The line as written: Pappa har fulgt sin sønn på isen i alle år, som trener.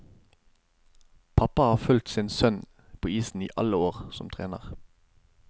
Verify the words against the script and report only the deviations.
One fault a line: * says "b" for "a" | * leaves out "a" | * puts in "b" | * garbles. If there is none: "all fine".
all fine